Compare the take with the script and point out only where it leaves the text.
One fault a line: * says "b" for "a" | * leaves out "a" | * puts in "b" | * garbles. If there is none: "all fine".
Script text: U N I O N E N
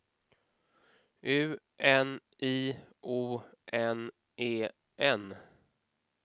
all fine